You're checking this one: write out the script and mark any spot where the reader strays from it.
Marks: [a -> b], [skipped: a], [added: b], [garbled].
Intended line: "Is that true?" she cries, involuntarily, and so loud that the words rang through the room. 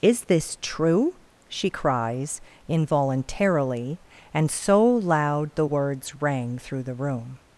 "Is [that -> this] true?" she cries, involuntarily, and so loud [skipped: that] the words rang through the room.